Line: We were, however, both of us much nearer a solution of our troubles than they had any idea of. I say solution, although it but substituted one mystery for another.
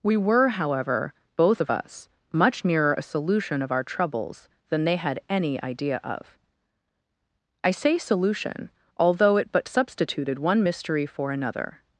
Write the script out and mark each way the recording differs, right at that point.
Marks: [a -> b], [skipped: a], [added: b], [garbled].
We were, however, both of us much nearer a solution of our troubles than they had any idea of. I say solution, although it but substituted one mystery for another.